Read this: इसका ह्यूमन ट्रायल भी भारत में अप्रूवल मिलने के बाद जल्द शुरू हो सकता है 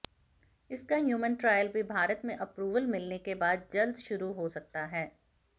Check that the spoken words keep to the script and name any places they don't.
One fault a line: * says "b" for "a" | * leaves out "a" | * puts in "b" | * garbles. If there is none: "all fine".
all fine